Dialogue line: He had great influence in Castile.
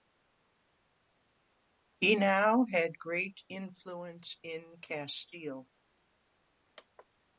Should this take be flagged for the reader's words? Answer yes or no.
yes